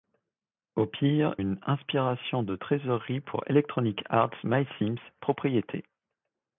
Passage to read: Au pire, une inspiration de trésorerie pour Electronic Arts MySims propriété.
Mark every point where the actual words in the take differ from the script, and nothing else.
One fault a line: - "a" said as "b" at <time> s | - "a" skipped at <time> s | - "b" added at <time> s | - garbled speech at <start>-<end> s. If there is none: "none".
none